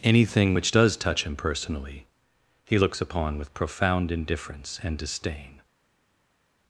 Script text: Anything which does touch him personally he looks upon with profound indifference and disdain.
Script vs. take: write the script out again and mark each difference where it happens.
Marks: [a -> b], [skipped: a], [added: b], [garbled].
Anything which does touch him personally he looks upon with profound indifference and disdain.